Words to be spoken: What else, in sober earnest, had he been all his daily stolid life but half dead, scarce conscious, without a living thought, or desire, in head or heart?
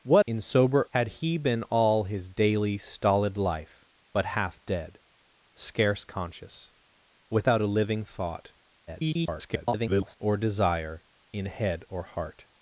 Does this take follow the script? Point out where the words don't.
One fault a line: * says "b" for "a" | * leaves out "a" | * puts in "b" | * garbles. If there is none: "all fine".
* leaves out "else"
* leaves out "earnest"
* garbles